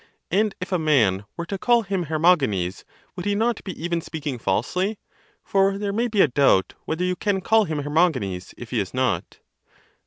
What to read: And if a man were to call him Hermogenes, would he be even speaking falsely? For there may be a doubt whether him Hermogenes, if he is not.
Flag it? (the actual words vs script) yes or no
yes